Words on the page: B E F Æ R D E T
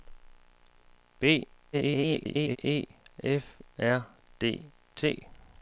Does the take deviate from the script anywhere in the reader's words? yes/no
yes